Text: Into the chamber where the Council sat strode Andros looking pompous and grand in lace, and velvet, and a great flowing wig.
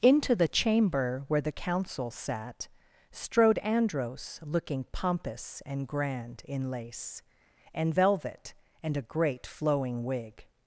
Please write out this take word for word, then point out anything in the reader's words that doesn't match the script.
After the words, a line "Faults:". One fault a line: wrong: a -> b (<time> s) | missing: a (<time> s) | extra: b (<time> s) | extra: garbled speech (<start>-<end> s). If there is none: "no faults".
Into the chamber where the Council sat strode Andros looking pompous and grand in lace, and velvet, and a great flowing wig.
Faults:
no faults